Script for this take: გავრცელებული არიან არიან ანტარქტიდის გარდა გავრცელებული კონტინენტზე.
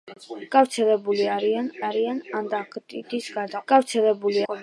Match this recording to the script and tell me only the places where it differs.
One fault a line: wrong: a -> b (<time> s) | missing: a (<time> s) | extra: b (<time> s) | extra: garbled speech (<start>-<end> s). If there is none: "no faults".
no faults